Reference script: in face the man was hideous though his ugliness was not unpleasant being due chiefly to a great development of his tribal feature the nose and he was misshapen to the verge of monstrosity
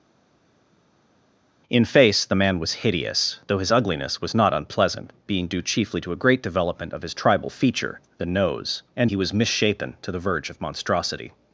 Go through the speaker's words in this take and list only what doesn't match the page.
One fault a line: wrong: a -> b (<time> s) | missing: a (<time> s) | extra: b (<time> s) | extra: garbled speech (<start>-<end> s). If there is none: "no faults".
no faults